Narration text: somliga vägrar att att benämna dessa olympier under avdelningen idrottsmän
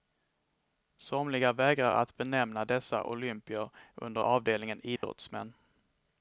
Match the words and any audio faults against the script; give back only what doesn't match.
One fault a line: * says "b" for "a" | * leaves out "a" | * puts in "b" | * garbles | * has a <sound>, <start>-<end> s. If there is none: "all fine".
* leaves out "att"
* has a dropout, 5.0-5.0 s